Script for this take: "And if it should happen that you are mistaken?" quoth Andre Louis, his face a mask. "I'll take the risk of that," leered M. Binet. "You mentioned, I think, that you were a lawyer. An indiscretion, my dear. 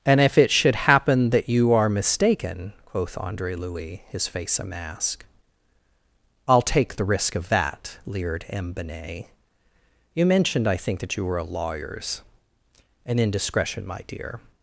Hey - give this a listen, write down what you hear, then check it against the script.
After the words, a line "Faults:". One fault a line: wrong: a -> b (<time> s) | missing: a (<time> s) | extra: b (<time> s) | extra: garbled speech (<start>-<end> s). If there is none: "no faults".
"And if it should happen that you are mistaken?" quoth Andre Louis, his face a mask. "I'll take the risk of that," leered M. Binet. "You mentioned, I think, that you were a lawyers. An indiscretion, my dear.
Faults:
wrong: lawyer -> lawyers (11.4 s)